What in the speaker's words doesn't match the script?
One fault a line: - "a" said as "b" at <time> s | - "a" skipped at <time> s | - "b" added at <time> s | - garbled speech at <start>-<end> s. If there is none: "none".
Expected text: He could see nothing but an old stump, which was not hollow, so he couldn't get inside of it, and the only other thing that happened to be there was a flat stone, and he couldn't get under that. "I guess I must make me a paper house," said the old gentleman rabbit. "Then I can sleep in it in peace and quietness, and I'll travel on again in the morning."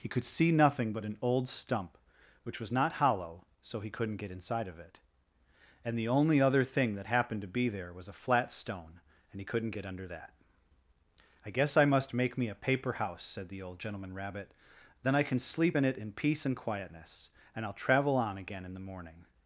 none